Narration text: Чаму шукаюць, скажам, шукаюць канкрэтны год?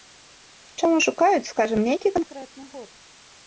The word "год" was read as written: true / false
true